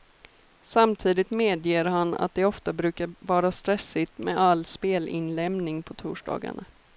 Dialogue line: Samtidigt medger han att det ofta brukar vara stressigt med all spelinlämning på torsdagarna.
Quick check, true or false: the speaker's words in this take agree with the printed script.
true